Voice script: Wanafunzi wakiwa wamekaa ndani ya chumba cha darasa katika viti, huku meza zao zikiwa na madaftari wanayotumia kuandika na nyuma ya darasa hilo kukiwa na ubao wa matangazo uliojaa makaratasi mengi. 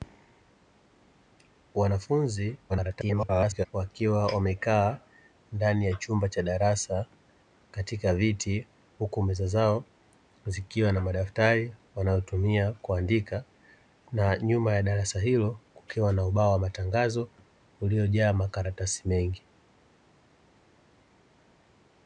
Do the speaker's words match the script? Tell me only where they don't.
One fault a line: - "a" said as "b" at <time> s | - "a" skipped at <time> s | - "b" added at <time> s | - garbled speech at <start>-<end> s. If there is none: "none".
- garbled speech at 2.7-3.7 s